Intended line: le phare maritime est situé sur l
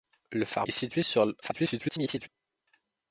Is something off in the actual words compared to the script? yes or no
yes